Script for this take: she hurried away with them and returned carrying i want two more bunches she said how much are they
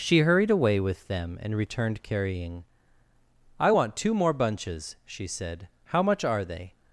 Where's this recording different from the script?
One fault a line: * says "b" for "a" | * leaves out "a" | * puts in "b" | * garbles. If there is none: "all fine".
all fine